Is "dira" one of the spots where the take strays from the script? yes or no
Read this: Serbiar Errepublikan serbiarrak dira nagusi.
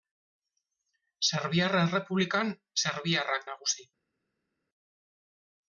yes